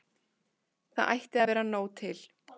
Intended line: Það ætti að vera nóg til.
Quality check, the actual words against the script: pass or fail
pass